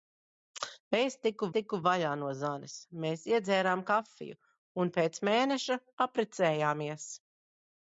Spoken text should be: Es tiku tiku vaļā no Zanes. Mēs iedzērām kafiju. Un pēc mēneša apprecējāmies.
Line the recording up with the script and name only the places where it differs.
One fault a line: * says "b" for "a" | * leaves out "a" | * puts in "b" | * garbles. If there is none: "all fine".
all fine